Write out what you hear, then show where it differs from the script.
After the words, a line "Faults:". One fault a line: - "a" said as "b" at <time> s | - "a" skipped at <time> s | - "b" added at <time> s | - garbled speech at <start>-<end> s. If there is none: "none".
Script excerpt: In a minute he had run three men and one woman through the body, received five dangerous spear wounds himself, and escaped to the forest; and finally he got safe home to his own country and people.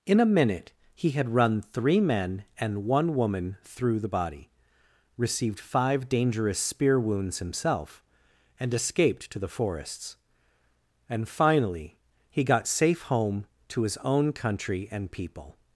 In a minute he had run three men and one woman through the body, received five dangerous spear wounds himself, and escaped to the forests; and finally he got safe home to his own country and people.
Faults:
- "forest" said as "forests" at 9.5 s